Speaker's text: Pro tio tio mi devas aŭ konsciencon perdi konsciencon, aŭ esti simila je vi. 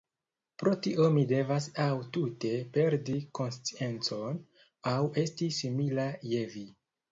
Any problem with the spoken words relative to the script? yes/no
yes